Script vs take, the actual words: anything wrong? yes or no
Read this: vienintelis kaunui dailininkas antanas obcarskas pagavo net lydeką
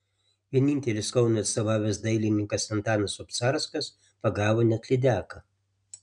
yes